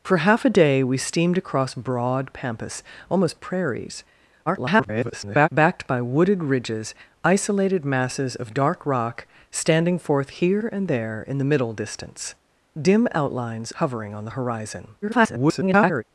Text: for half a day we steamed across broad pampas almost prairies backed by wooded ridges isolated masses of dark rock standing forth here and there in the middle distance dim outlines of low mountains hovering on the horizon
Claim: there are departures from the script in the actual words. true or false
true